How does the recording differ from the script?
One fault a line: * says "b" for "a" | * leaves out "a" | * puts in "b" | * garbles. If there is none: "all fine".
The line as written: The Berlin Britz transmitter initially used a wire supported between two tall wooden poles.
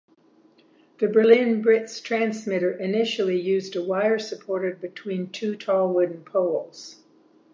all fine